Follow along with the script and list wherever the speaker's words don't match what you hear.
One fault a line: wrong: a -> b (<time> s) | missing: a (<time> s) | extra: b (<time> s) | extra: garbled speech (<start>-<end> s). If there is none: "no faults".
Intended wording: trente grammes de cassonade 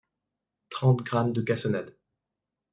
no faults